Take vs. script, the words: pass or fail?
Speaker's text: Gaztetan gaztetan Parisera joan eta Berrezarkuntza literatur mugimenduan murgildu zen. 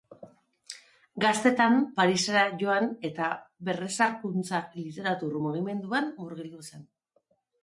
fail